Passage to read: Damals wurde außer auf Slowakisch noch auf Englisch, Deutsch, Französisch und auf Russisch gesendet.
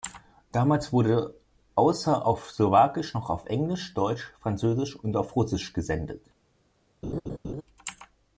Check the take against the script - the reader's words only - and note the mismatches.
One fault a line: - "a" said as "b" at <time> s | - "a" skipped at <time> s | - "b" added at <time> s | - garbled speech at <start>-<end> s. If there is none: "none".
none